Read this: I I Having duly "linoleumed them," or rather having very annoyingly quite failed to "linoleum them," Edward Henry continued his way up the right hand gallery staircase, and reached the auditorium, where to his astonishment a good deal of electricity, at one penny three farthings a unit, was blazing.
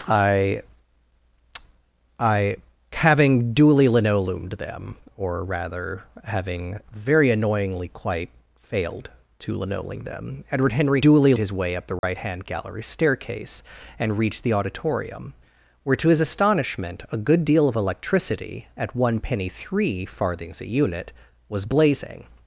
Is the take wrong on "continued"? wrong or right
wrong